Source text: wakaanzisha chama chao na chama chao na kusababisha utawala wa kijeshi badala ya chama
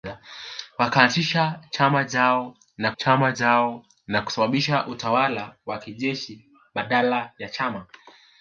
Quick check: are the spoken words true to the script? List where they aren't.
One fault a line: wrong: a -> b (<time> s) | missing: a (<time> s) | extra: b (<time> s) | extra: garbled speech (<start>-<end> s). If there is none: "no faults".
no faults